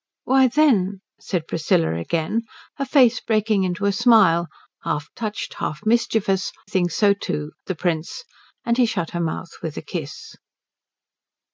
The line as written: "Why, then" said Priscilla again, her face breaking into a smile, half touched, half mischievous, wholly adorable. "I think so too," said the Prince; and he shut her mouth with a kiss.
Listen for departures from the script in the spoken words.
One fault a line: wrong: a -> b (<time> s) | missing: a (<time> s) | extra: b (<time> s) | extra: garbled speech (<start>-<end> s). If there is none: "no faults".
missing: wholly adorable I (6.5 s)
missing: said (7.5 s)